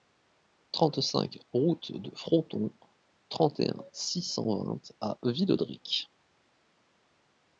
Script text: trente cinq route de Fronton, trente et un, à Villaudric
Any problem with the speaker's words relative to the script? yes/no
yes